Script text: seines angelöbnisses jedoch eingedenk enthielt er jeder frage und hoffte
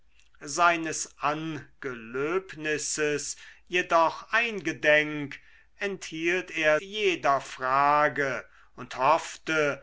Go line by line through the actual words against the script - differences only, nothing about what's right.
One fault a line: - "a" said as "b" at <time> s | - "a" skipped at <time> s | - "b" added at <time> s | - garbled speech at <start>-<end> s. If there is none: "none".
none